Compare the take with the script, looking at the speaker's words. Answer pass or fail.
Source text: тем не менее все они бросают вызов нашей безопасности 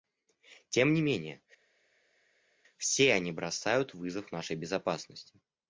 pass